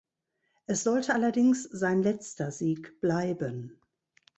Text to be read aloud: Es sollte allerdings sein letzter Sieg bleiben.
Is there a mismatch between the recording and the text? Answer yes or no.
no